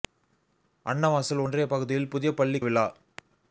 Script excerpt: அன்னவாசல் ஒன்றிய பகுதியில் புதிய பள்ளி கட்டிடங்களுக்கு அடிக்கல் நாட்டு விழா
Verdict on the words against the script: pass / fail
fail